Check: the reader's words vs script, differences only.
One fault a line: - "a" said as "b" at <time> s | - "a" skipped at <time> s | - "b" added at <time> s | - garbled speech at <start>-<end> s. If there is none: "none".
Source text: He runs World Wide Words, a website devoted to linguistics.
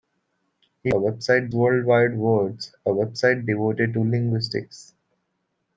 - "runs" said as "website" at 0.9 s